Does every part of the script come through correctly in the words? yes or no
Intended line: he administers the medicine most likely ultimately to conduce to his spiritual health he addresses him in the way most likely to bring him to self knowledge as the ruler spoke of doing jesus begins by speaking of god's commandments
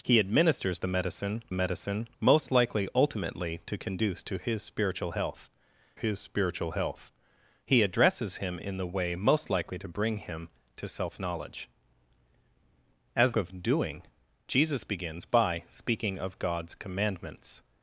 no